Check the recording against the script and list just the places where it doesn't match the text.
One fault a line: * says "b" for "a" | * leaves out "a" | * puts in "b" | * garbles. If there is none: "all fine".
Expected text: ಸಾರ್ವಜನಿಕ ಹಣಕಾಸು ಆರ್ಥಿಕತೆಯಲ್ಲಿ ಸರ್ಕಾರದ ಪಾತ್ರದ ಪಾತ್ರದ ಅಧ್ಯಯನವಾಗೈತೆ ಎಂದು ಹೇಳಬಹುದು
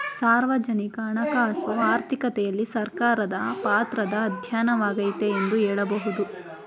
* leaves out "ಪಾತ್ರದ"